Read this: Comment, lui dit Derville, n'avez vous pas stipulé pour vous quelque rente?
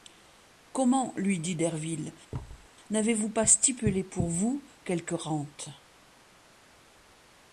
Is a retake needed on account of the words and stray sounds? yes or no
yes